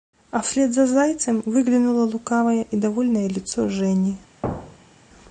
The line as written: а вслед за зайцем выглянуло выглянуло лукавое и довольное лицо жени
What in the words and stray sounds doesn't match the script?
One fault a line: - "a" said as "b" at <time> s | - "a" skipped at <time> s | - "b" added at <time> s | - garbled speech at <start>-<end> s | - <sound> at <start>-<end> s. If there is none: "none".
- "выглянуло" skipped at 2.0 s
- thud at 4.4-5.1 s